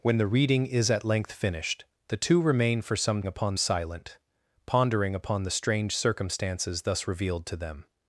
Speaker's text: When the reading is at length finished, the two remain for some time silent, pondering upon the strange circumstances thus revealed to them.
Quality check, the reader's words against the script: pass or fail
fail